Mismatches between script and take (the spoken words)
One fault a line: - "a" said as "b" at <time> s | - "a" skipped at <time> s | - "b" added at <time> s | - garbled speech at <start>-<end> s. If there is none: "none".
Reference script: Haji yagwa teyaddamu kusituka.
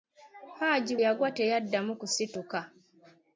none